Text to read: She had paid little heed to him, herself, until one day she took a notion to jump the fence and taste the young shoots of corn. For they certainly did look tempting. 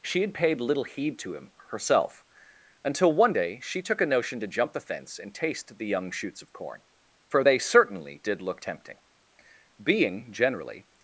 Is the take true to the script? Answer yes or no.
no